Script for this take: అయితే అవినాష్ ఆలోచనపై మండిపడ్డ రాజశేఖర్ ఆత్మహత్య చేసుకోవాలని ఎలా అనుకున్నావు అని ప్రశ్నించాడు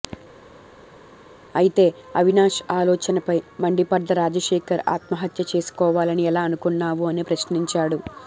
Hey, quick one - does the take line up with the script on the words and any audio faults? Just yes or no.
yes